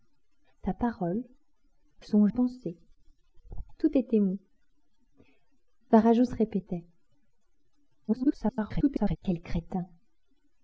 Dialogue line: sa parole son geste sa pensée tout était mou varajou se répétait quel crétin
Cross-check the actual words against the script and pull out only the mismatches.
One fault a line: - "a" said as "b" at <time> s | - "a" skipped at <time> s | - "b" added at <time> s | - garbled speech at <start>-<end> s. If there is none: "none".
- "geste sa" skipped at 2.3 s
- garbled speech at 8.1-9.2 s